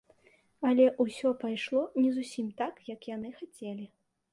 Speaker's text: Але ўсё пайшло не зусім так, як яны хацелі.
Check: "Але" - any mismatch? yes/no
no